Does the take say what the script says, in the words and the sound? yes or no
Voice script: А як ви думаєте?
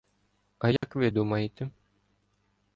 no